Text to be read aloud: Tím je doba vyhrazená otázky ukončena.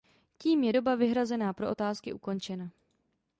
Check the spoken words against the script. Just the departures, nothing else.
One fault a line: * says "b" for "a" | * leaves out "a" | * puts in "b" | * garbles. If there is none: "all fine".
* puts in "pro"